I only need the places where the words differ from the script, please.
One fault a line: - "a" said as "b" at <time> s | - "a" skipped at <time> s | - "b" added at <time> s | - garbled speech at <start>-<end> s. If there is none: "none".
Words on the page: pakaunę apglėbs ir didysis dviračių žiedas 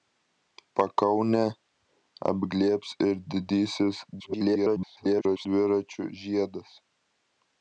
- garbled speech at 4.2-5.5 s